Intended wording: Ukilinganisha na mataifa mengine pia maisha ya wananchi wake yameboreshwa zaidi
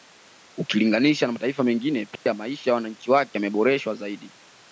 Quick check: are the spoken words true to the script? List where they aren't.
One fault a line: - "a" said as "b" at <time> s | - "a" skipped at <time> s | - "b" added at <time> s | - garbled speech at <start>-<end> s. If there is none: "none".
none